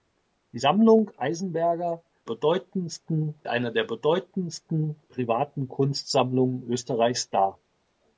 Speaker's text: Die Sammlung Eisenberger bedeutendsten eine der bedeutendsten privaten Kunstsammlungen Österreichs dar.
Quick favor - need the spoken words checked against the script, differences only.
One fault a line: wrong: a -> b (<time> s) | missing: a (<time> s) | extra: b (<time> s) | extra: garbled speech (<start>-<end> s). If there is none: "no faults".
no faults